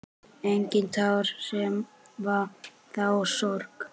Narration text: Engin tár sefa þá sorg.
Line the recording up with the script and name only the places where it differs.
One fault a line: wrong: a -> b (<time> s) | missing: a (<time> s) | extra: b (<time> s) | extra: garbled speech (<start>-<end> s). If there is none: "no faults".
no faults